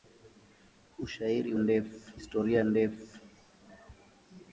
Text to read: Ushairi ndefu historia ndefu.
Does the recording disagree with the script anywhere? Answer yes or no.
no